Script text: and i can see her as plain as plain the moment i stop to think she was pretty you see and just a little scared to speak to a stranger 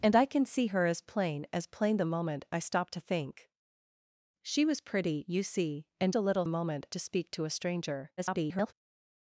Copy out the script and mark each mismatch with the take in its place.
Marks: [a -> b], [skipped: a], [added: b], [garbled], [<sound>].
and i can see her as plain as plain the moment i stop to think she was pretty you see and [skipped: just] a little [scared -> moment] to speak to a stranger [garbled]